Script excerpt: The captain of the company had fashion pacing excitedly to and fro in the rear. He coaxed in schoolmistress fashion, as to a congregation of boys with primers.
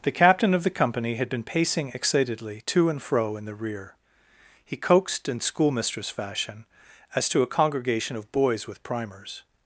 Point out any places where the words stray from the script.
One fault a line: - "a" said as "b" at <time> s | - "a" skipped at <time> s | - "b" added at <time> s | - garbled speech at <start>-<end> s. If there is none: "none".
- "fashion" said as "been" at 1.3 s